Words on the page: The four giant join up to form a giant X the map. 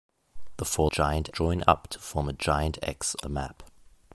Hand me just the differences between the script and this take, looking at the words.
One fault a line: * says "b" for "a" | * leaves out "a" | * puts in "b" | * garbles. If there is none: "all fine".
all fine